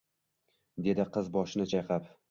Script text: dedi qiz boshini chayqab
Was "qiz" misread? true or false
false